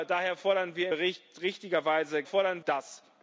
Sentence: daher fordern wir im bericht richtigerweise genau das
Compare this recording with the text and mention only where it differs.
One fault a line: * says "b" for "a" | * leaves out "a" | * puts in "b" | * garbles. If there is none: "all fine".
* leaves out "im"
* says "fordern" for "genau"